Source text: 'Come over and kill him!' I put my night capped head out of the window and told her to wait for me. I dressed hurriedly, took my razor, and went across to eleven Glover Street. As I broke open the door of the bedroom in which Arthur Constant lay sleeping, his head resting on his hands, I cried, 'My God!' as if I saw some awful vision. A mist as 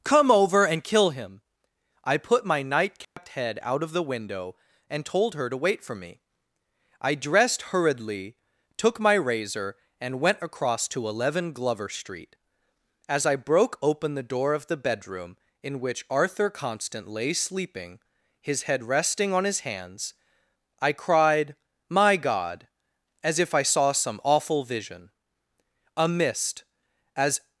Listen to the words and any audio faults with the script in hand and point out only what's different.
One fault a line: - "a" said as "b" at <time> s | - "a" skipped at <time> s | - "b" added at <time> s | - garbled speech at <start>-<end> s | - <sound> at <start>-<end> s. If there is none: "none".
- dropout at 3.0-3.2 s